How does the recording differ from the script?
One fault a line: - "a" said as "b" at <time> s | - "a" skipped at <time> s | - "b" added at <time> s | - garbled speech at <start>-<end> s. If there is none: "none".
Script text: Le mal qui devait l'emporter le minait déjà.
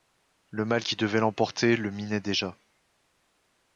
none